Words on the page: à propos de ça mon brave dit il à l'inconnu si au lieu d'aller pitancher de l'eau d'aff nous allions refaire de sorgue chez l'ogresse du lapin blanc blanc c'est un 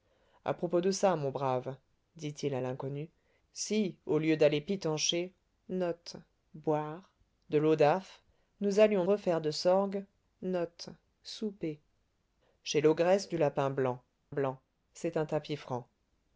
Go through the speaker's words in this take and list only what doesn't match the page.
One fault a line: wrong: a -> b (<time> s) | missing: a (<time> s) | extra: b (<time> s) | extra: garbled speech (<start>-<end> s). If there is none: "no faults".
no faults